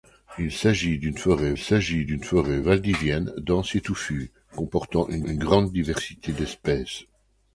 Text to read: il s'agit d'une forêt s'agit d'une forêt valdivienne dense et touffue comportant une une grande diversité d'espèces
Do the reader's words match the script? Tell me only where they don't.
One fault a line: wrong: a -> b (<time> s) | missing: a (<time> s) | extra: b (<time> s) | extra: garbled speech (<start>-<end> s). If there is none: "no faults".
no faults